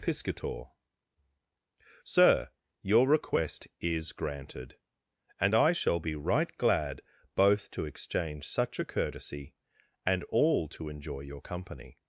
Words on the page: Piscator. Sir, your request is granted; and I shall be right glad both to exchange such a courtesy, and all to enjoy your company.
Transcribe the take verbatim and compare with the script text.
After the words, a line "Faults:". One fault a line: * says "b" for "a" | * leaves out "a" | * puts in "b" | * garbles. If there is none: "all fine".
Piscator. Sir, your request is granted; and I shall be right glad both to exchange such a courtesy, and all to enjoy your company.
Faults:
all fine